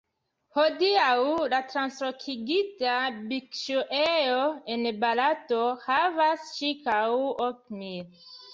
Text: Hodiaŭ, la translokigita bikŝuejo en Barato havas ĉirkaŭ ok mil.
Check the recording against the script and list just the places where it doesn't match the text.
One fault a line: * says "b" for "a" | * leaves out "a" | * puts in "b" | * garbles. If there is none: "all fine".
all fine